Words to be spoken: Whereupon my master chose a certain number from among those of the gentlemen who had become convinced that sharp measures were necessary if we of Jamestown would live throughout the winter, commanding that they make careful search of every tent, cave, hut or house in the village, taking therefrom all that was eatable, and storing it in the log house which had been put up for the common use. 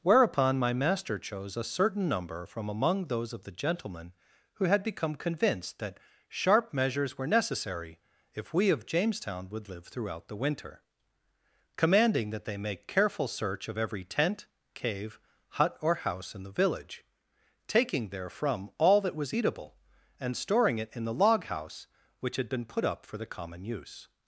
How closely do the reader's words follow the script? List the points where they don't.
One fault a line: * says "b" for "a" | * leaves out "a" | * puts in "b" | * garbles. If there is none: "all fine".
all fine